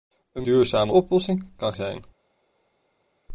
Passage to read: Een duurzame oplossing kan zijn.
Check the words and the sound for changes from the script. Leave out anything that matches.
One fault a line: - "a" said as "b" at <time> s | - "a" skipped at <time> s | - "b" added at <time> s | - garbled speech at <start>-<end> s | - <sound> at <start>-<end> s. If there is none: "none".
none